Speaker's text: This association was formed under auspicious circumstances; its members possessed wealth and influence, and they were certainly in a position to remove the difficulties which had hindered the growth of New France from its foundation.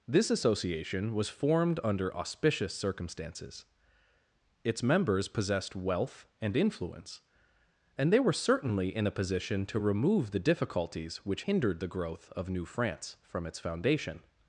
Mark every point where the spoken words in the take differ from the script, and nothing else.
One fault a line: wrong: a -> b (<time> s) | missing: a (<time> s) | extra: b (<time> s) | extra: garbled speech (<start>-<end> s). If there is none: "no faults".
missing: had (11.4 s)